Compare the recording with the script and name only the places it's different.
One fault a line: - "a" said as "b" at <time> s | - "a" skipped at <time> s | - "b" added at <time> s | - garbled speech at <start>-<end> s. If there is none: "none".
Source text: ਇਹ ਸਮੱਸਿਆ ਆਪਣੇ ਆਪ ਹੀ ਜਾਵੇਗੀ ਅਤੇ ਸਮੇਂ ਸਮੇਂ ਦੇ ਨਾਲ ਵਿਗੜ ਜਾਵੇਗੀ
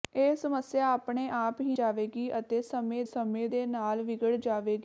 none